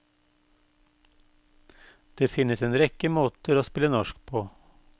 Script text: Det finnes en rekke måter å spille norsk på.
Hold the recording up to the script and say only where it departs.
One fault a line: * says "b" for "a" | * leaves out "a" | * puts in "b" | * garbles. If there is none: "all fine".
all fine